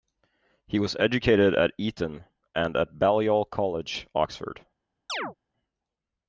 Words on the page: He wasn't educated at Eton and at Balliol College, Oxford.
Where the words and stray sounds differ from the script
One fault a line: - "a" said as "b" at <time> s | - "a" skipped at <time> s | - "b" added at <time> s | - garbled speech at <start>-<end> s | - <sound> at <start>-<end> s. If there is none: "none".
- "wasn't" said as "was" at 0.8 s
- chirp at 5.1-5.4 s